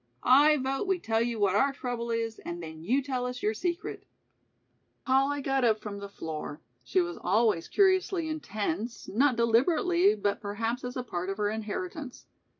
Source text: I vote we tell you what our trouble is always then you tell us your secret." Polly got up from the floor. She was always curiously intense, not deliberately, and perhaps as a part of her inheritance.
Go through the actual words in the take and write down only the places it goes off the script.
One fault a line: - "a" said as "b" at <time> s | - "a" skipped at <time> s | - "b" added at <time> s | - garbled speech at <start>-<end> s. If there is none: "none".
- "always" said as "and" at 2.4 s
- "and" said as "but" at 10.2 s